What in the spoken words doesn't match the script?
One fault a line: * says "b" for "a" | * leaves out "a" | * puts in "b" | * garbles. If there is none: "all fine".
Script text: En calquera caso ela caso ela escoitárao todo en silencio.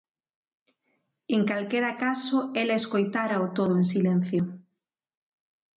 * leaves out "caso ela"